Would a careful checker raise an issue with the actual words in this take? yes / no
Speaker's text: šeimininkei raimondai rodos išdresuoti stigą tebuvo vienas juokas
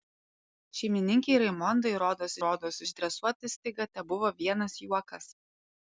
yes